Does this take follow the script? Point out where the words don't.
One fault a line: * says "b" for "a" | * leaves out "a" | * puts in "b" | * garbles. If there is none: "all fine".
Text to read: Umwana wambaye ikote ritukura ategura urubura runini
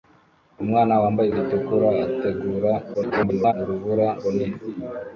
* leaves out "ikote"
* garbles